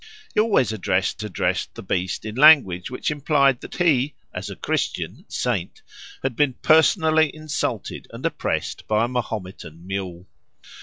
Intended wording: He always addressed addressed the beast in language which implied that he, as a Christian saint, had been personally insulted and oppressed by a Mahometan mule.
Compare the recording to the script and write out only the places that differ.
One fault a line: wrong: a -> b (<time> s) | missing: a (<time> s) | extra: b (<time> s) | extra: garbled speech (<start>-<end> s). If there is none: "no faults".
no faults